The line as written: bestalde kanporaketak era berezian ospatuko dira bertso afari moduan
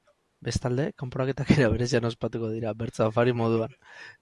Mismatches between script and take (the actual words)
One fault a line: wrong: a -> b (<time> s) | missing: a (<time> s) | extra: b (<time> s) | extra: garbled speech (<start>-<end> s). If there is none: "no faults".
no faults